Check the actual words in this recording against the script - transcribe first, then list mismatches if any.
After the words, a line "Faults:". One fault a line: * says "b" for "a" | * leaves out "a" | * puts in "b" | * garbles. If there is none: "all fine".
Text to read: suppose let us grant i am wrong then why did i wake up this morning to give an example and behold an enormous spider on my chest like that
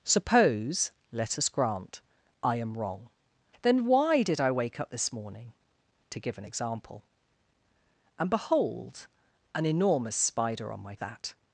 suppose let us grant i am wrong then why did i wake up this morning to give an example and behold an enormous spider on my that
Faults:
* leaves out "chest like"